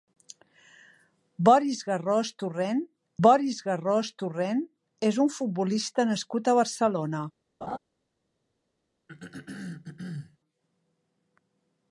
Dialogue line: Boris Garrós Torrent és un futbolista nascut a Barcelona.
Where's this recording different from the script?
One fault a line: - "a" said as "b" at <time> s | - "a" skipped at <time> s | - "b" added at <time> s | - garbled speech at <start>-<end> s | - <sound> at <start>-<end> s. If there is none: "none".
- "boris Garrós Torrent" added at 3.3 s
- laugh at 7.6-7.8 s
- throat clearing at 9.1-10.4 s